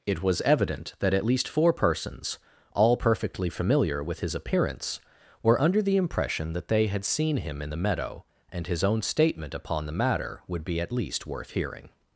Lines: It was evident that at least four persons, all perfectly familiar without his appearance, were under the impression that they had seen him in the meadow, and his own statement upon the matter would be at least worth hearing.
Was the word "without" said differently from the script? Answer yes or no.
yes